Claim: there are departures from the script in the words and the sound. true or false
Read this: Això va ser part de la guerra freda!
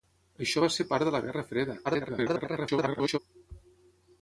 true